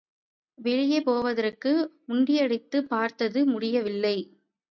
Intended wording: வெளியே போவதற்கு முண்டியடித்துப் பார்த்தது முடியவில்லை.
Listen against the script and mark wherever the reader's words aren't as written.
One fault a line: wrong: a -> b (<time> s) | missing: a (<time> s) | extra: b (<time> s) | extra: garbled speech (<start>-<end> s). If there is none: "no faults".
no faults